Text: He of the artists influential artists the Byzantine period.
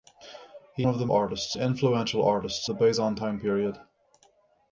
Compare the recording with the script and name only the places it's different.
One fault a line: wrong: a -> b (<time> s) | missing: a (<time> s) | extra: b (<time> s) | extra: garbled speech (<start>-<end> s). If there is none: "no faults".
no faults